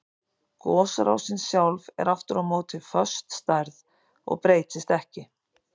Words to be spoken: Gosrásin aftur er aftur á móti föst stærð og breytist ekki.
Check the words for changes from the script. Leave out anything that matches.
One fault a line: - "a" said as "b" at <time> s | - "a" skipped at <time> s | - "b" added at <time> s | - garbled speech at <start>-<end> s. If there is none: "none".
- "aftur" said as "sjálf" at 1.5 s